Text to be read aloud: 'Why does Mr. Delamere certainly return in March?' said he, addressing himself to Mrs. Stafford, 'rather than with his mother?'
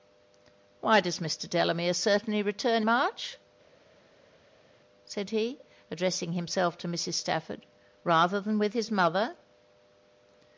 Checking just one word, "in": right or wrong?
wrong